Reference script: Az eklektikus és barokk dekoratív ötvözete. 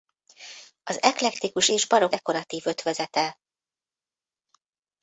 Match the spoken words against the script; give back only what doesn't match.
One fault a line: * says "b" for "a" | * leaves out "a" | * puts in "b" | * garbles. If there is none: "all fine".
all fine